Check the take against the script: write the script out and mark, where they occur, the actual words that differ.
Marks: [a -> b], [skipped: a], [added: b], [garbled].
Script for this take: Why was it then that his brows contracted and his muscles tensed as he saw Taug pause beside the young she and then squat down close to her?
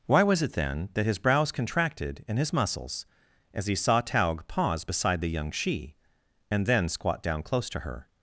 Why was it then that his brows contracted and his muscles [skipped: tensed] as he saw Taug pause beside the young she and then squat down close to her?